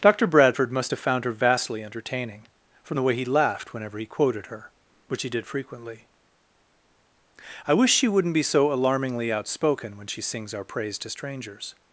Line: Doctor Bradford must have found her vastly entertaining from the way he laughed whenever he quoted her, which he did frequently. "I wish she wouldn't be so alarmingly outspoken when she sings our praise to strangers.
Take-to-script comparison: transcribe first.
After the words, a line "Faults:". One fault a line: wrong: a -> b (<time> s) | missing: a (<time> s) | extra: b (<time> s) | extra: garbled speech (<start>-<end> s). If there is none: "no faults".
Doctor Bradford must have found her vastly entertaining from the way he laughed whenever he quoted her, which he did frequently. "I wish she wouldn't be so alarmingly outspoken when she sings our praise to strangers.
Faults:
no faults